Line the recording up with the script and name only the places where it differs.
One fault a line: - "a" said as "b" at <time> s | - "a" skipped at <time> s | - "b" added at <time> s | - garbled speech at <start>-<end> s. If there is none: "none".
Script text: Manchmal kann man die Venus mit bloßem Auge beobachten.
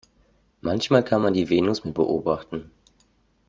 - "bloßem Auge" skipped at 2.0 s